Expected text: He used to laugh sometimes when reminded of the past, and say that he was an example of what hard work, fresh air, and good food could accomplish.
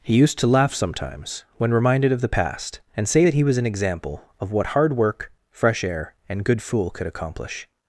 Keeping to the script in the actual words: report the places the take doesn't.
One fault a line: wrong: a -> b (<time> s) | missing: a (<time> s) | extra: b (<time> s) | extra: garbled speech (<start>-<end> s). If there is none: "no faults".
wrong: food -> fool (6.6 s)